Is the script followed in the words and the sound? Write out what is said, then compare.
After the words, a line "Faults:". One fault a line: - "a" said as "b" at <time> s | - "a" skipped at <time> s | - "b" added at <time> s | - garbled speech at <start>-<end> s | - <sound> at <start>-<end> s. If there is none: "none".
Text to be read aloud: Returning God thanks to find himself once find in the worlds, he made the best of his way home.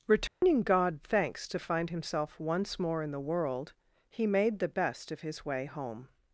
Returning God thanks to find himself once more in the world, he made the best of his way home.
Faults:
- dropout at 0.3-0.4 s
- "find" said as "more" at 2.8 s
- "worlds" said as "world" at 3.2 s